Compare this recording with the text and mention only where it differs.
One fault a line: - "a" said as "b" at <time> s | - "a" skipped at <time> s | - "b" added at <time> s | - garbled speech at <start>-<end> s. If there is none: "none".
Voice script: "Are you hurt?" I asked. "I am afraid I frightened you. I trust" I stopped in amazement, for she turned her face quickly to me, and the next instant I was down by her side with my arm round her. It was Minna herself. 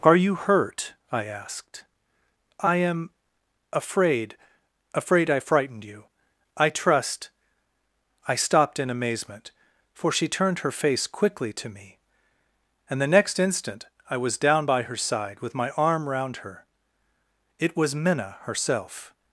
- "afraid" added at 5.0 s